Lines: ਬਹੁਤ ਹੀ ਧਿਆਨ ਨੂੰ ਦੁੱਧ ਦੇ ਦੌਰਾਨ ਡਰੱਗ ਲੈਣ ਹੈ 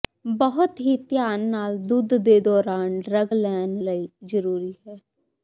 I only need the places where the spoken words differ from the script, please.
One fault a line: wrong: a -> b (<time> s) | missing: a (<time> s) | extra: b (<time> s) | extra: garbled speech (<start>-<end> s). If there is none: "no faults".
wrong: ਨੂੰ -> ਨਾਲ (1.5 s)
extra: ਲਈ ਜ਼ਰੂਰੀ (3.8 s)